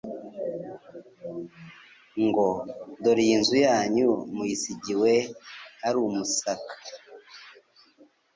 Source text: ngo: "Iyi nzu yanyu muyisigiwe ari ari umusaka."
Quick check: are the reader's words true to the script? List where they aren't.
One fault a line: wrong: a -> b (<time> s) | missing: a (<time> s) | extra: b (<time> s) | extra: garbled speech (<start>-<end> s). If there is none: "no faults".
extra: Dore (3.0 s)
missing: ari (6.0 s)